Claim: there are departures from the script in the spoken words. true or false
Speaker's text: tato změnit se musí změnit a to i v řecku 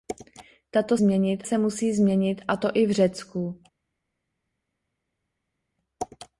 false